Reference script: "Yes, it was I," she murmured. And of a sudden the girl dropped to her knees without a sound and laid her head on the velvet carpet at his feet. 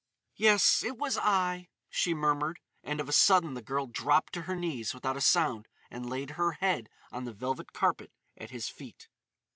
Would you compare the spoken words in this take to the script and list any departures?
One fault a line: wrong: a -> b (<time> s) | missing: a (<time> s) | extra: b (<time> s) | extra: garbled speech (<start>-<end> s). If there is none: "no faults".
no faults